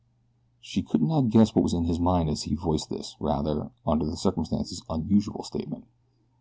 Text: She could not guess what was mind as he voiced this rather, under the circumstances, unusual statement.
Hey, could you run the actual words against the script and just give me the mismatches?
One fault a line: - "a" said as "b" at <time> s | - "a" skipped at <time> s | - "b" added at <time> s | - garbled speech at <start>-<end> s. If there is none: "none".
- "in his" added at 1.7 s